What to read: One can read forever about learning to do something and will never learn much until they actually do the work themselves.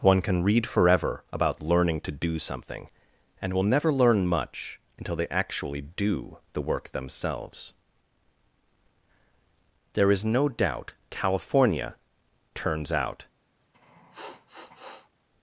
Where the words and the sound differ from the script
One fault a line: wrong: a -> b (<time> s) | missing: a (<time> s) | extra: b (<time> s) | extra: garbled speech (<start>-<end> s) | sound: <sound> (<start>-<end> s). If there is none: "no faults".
extra: There is no doubt California turns out (9.9 s)
sound: sniff (13.6-15.1 s)